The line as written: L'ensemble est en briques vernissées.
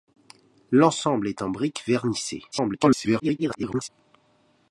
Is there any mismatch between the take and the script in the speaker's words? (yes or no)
yes